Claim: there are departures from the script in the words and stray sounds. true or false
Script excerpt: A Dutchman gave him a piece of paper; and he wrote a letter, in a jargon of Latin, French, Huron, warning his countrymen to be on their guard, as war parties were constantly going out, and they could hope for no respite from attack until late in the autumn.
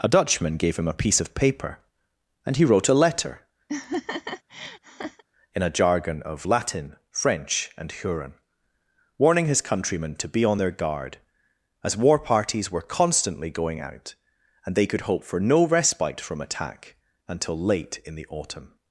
true